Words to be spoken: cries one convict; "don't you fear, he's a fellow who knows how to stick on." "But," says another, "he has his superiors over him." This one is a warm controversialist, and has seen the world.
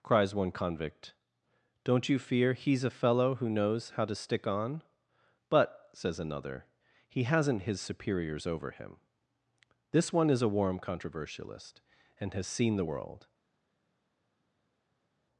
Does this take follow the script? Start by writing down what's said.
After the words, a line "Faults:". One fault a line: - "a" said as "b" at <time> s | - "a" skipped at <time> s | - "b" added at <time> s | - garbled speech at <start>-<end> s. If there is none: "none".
cries one convict; "don't you fear, he's a fellow who knows how to stick on." "But," says another, "he hasn't his superiors over him." This one is a warm controversialist, and has seen the world.
Faults:
- "has" said as "hasn't" at 7.2 s